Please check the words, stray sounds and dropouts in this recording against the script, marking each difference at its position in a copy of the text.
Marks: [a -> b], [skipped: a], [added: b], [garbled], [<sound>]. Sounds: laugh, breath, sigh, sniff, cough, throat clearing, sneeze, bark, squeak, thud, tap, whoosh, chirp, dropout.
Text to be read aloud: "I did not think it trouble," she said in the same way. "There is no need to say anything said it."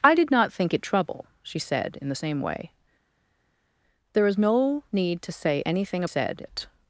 "I did not think it trouble," she said in the same way. "There is no need to say anything said it."